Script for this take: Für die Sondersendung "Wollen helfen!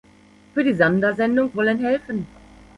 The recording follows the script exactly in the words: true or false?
true